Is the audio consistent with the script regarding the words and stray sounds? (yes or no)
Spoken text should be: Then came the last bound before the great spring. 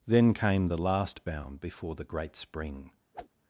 no